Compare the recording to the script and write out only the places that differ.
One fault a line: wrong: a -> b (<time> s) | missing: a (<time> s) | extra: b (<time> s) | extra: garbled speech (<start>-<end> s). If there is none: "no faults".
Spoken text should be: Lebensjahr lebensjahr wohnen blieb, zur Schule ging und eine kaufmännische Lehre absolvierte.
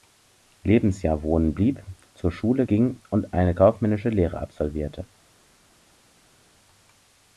missing: lebensjahr (1.2 s)